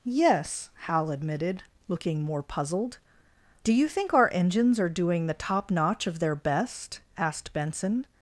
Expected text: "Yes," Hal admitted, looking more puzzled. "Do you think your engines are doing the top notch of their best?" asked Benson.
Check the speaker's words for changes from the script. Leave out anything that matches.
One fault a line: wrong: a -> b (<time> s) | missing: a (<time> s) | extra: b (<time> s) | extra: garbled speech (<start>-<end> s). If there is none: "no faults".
wrong: your -> our (4.1 s)